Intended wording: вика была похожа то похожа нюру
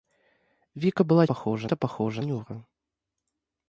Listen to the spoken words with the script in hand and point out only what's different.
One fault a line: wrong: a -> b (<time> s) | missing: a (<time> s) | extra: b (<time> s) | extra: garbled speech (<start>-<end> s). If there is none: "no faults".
no faults